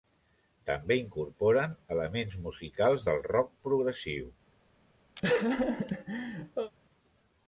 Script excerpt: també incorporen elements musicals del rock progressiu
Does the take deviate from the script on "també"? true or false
false